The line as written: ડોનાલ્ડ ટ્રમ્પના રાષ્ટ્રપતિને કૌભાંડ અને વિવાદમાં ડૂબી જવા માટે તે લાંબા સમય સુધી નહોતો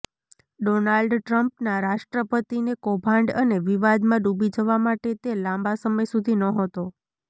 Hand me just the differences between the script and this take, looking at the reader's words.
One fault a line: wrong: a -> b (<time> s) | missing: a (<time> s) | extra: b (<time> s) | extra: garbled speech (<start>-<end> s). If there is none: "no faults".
no faults